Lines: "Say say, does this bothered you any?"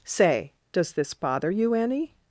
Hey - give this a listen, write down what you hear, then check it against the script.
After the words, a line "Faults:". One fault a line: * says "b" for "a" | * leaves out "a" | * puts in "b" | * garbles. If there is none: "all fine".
"Say, does this bother you any?"
Faults:
* leaves out "say"
* says "bother" for "bothered"